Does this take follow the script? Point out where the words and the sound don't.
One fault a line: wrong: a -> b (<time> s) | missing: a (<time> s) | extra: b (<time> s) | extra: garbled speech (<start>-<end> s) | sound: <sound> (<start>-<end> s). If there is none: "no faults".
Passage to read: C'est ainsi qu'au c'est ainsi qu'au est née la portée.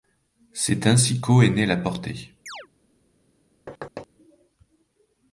missing: c'est ainsi qu'au (1.4 s)
sound: chirp (2.5-2.7 s)
sound: thud (3.7-4.1 s)